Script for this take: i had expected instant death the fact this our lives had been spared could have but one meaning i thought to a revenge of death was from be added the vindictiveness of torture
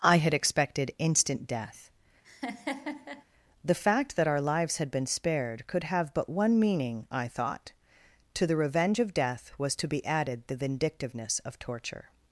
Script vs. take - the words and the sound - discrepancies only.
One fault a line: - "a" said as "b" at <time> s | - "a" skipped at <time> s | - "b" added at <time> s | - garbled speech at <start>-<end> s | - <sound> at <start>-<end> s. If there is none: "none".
- laugh at 2.2-3.2 s
- "this" said as "that" at 4.2 s
- "a" said as "the" at 8.5 s
- "from" said as "to" at 9.7 s